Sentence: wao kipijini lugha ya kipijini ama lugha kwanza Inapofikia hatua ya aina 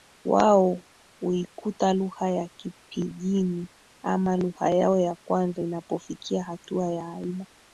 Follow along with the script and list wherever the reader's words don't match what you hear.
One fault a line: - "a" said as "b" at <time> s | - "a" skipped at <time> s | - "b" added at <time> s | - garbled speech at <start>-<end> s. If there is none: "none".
- "kipijini" said as "huikuta" at 1.2 s
- "yao ya" added at 4.7 s